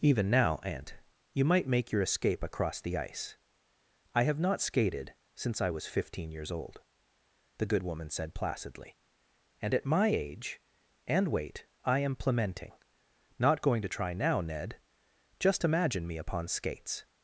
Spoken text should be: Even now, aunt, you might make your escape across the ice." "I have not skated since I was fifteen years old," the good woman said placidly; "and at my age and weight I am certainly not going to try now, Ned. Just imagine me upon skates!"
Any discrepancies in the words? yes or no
yes